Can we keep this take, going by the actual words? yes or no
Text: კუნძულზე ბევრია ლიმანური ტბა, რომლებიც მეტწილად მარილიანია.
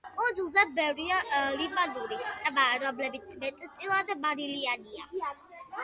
yes